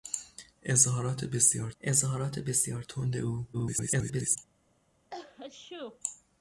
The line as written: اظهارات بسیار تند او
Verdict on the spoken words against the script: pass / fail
fail